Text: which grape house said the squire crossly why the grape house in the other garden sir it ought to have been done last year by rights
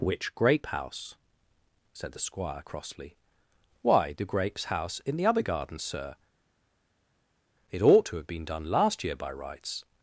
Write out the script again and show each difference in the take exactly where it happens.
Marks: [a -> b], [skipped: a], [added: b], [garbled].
which grape house said the squire crossly why the [grape -> grapes] house in the other garden sir it ought to have been done last year by rights